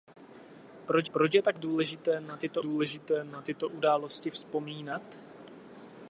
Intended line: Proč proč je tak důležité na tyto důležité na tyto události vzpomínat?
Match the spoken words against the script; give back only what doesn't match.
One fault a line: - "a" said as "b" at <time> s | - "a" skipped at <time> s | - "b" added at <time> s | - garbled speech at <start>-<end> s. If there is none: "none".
none